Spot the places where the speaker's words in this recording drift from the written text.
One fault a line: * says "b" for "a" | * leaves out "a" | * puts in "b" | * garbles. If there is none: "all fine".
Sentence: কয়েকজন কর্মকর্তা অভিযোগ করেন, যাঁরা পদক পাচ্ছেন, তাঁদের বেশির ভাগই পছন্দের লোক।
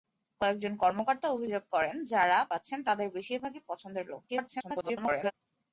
* leaves out "পদক"
* garbles